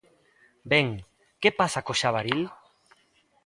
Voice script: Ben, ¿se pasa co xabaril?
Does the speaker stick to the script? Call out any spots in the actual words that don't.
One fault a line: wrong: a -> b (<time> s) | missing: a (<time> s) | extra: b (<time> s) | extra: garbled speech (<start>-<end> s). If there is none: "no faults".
wrong: se -> que (1.4 s)